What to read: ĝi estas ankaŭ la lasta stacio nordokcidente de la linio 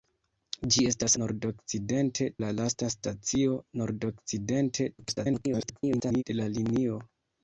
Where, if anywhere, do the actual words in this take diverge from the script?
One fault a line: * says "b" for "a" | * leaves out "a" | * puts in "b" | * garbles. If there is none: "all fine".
* says "nordokcidente" for "ankaŭ"
* garbles